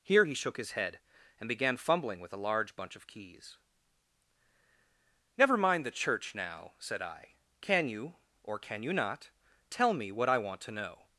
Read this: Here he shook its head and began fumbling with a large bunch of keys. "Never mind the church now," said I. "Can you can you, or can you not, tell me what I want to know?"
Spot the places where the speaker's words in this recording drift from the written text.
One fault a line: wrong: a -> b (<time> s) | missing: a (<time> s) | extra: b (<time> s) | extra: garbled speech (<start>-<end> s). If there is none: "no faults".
wrong: its -> his (0.6 s)
missing: can you (8.2 s)